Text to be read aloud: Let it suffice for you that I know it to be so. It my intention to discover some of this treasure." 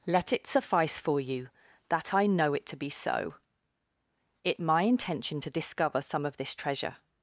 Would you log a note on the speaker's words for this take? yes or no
no